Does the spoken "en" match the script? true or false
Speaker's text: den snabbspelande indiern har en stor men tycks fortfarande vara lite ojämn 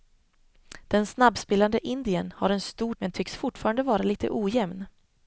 true